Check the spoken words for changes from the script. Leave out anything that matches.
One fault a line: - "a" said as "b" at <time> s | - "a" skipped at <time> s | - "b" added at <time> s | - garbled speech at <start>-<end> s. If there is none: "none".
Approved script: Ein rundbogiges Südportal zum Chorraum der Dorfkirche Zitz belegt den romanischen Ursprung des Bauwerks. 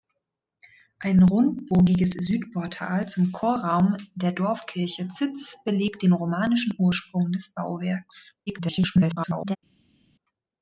- garbled speech at 8.5-9.6 s